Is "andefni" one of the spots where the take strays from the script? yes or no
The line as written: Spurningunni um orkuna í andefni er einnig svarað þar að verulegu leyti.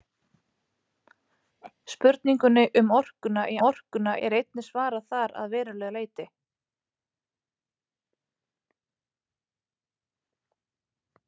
yes